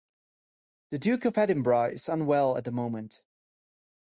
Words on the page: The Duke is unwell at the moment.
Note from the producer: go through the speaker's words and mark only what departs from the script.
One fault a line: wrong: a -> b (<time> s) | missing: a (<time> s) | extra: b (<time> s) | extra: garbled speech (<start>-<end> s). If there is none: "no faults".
extra: of Edinburgh (1.2 s)